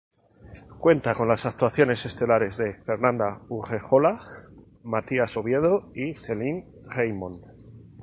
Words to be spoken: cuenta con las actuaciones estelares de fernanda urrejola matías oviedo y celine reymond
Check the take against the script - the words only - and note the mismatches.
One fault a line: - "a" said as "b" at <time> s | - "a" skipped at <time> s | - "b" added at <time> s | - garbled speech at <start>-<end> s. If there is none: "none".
none